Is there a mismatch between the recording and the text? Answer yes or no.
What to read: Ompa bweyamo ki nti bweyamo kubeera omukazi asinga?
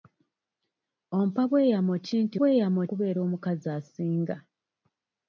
no